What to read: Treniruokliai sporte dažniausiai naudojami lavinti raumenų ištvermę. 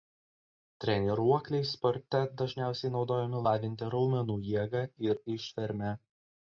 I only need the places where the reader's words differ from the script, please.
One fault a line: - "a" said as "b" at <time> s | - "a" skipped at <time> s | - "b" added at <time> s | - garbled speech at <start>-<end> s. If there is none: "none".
- "jėgą ir" added at 4.5 s